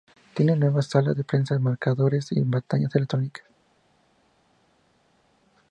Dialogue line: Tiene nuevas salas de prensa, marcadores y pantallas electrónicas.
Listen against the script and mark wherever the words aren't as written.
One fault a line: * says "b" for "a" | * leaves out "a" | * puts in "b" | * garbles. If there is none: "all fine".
all fine